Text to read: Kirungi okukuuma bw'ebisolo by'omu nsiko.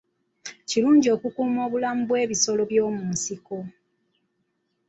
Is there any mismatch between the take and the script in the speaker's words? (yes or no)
yes